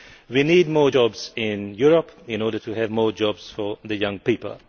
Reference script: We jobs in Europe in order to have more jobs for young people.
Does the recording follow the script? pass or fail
fail